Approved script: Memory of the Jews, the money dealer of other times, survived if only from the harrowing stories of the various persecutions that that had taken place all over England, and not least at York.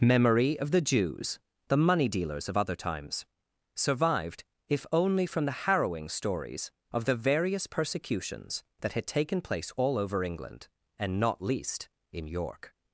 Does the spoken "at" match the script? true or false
false